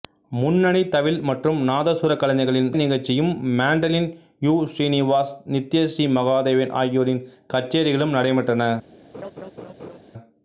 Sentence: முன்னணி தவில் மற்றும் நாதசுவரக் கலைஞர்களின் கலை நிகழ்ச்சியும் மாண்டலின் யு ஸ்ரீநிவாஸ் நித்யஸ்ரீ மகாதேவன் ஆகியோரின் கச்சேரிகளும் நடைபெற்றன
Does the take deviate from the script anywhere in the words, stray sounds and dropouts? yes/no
yes